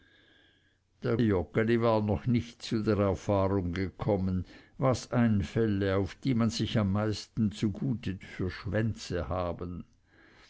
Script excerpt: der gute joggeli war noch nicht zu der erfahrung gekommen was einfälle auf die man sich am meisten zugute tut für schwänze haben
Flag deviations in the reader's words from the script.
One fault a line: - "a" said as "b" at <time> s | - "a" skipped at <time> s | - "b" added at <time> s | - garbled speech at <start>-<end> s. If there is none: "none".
- "gute" skipped at 1.1 s
- "tut" skipped at 8.2 s